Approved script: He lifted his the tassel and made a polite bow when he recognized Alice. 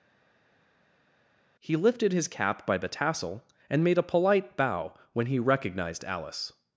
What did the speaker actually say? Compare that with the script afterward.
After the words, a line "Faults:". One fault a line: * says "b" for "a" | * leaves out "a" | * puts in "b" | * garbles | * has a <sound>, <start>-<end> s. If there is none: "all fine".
He lifted his cap by the tassel and made a polite bow when he recognized Alice.
Faults:
* puts in "cap by"